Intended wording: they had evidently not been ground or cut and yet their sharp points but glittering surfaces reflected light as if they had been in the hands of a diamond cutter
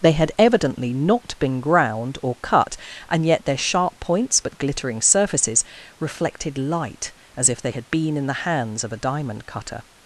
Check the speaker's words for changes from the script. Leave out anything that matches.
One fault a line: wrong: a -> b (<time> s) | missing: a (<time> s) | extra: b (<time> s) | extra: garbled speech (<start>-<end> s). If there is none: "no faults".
no faults